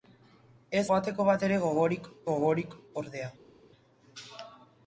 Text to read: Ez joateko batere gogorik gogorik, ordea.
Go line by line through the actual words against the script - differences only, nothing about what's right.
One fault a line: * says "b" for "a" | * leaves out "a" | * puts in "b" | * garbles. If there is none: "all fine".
all fine